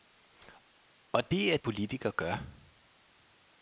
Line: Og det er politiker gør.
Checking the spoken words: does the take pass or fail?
pass